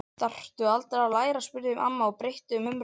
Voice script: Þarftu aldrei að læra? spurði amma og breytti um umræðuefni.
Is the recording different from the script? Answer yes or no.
no